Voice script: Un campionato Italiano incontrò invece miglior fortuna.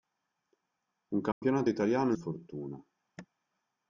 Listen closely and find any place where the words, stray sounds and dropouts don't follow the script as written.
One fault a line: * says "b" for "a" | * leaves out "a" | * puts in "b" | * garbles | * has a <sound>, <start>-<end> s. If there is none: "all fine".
* has a dropout, 1.3-1.4 s
* leaves out "incontrò invece miglior"